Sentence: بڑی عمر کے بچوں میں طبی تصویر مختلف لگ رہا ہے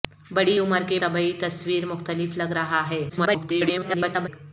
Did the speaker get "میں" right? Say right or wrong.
wrong